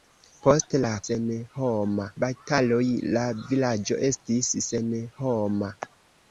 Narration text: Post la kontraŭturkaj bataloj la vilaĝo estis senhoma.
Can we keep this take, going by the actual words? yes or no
no